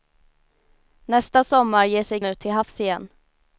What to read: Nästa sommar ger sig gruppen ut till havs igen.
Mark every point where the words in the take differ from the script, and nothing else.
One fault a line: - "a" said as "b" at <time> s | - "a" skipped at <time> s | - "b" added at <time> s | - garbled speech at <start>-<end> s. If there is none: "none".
- "gruppen" skipped at 2.2 s